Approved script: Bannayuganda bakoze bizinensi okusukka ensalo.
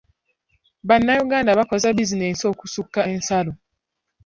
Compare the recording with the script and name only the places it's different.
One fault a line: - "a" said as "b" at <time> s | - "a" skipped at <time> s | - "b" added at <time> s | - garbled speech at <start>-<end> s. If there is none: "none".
none